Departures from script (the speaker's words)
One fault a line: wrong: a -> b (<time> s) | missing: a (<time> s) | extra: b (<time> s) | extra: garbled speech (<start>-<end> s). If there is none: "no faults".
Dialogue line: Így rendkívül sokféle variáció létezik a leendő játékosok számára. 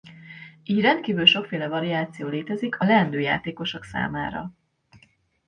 no faults